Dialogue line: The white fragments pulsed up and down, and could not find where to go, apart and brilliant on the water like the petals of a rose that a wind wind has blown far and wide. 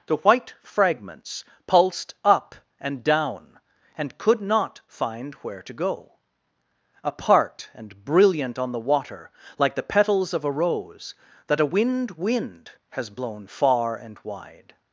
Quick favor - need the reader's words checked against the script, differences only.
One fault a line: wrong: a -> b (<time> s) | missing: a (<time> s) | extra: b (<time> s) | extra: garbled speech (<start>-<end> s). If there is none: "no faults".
no faults